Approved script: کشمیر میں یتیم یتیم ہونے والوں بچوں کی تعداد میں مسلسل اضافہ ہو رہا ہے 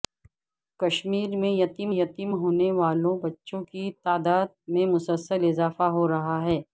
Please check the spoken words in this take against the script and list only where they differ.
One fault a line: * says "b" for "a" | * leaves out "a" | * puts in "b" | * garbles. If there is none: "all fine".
all fine